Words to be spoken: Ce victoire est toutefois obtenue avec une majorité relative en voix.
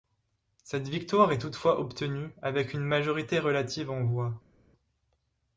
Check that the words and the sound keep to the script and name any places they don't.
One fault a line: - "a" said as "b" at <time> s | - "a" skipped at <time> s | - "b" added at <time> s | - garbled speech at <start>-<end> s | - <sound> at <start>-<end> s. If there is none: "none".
- "Ce" said as "Cette" at 0.6 s